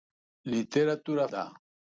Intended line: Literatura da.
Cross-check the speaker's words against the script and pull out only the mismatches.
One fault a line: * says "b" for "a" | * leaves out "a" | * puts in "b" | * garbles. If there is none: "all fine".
all fine